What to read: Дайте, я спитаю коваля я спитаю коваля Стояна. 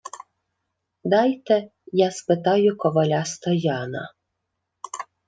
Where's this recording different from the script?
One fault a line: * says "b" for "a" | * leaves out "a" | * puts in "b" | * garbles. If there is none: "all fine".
* leaves out "я спитаю коваля"